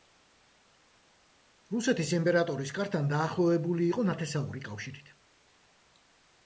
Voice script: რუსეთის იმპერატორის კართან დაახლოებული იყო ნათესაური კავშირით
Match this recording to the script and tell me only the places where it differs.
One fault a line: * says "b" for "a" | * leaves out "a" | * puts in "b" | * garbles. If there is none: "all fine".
all fine